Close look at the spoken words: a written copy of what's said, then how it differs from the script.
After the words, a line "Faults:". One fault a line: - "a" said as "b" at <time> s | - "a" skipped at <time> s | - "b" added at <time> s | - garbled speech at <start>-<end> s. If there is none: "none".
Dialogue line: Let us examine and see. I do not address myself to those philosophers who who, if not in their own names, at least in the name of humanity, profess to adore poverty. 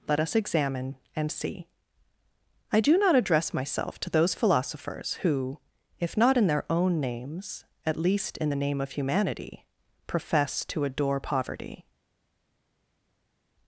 Let us examine and see. I do not address myself to those philosophers who, if not in their own names, at least in the name of humanity, profess to adore poverty.
Faults:
- "who" skipped at 5.6 s